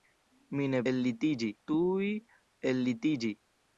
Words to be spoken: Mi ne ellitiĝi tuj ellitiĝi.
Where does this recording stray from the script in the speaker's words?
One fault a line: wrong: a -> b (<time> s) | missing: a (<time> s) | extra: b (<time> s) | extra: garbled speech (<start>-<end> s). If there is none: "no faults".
no faults